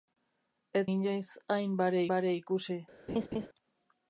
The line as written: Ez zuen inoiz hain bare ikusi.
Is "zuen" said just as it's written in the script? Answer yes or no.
no